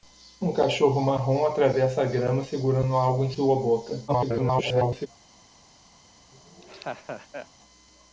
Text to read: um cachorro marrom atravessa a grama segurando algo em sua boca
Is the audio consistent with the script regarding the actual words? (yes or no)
no